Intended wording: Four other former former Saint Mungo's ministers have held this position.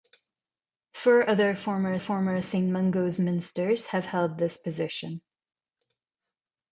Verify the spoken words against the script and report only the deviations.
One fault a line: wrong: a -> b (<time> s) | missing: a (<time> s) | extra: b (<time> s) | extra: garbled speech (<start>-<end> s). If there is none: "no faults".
no faults